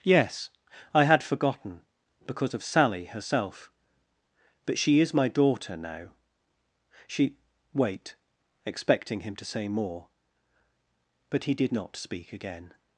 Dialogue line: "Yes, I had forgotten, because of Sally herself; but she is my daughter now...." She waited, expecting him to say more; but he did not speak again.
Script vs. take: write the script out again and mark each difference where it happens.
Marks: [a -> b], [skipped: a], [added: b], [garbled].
"Yes, I had forgotten, because of Sally herself; but she is my daughter now...." She [waited, -> wait] expecting him to say more; but he did not speak again.